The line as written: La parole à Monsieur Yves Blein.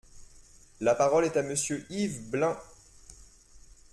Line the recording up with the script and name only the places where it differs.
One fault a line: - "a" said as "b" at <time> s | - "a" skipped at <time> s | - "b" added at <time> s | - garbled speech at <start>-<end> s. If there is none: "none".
- "est" added at 1.2 s